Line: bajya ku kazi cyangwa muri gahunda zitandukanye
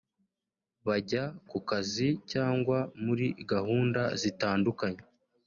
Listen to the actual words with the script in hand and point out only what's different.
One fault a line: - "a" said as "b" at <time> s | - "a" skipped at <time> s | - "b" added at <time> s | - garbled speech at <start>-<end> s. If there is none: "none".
none